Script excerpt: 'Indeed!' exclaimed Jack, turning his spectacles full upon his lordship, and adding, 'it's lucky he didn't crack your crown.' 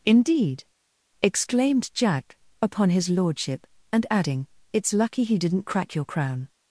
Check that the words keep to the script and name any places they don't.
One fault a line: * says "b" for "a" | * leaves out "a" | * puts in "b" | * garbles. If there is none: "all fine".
* leaves out "turning his spectacles full"